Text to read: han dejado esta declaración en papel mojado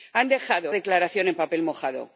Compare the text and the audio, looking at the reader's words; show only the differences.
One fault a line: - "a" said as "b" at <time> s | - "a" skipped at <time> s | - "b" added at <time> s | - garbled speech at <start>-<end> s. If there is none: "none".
- "esta" skipped at 0.8 s